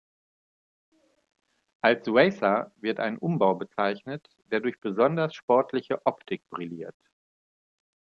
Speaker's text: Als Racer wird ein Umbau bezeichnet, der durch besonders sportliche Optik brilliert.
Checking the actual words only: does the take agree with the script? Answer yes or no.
yes